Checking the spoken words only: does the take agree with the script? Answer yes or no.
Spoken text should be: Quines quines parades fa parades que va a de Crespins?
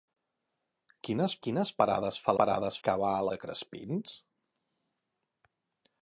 yes